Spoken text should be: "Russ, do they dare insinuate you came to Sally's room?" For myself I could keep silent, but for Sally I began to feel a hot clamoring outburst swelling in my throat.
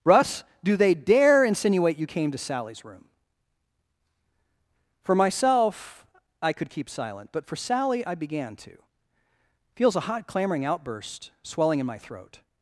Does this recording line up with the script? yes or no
no